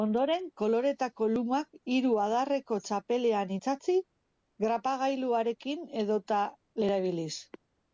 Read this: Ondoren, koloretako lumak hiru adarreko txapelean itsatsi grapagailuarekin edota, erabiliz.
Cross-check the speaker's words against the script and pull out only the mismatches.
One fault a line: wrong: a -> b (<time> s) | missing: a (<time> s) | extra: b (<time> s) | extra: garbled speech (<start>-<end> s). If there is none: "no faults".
no faults